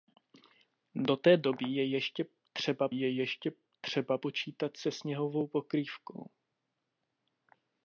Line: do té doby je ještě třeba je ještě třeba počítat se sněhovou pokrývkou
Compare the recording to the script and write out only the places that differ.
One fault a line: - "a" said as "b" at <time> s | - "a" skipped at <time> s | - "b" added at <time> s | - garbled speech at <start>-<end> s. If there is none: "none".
none